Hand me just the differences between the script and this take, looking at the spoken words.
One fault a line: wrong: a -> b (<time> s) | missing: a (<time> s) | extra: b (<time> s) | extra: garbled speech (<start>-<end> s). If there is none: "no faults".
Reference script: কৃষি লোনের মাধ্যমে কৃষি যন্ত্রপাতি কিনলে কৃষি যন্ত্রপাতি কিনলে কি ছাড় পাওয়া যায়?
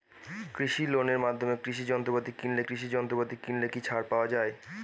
no faults